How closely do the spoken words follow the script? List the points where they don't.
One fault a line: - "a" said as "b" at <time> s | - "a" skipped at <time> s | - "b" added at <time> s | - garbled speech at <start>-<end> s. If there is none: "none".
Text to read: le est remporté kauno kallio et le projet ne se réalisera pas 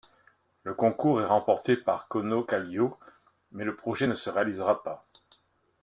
- "concours" added at 0.7 s
- "par" added at 1.8 s
- "et" said as "mais" at 3.5 s